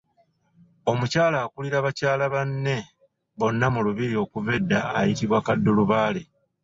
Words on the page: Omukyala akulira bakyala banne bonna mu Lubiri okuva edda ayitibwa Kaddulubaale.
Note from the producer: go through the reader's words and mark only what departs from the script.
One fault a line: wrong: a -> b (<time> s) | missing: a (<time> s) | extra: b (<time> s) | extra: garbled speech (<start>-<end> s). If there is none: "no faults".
no faults